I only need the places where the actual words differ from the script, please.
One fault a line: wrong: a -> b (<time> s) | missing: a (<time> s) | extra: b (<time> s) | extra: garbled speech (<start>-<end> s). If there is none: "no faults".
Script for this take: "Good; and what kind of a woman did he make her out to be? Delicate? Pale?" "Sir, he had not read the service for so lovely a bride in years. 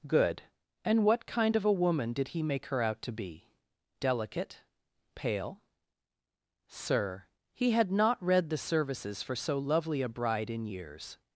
wrong: service -> services (8.6 s)